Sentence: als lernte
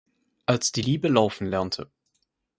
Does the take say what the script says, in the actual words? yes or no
no